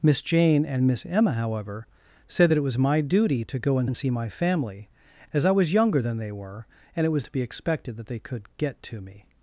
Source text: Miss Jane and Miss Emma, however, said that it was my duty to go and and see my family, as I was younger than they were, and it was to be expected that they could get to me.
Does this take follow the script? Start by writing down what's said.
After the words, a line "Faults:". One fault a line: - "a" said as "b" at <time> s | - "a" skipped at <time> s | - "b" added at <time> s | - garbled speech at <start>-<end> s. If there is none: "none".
Miss Jane and Miss Emma, however, said that it was my duty to go and and see my family, as I was younger than they were, and it was to be expected that they could get to me.
Faults:
none